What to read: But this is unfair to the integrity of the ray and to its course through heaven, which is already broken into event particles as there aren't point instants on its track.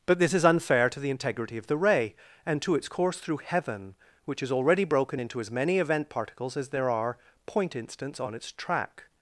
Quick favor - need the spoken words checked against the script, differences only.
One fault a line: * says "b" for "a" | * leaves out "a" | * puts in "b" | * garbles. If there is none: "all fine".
* puts in "as many"
* says "are" for "aren't"